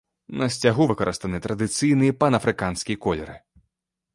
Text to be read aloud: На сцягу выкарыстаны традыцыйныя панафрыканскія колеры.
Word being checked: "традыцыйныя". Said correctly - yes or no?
yes